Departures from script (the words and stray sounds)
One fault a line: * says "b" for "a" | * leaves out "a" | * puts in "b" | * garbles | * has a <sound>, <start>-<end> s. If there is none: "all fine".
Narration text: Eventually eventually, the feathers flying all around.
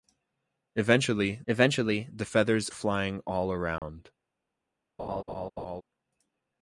* has a dropout, 3.8-3.8 s
* has a laugh, 5.0-5.8 s